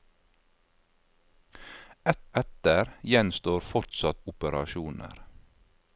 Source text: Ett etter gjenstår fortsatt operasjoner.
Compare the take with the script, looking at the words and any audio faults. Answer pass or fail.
pass